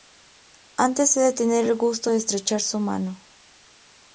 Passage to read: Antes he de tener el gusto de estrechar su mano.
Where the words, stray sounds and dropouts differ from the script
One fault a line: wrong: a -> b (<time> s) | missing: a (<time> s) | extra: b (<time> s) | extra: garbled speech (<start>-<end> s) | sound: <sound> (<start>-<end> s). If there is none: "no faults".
no faults